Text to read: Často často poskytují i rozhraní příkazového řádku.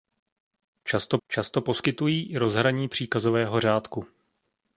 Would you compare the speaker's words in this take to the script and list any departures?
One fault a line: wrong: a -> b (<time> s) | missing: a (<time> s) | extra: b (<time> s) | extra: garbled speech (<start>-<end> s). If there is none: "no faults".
no faults